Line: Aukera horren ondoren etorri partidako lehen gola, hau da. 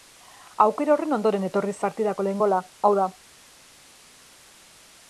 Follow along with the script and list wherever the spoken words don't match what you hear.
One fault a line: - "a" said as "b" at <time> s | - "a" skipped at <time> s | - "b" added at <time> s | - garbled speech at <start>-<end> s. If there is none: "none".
none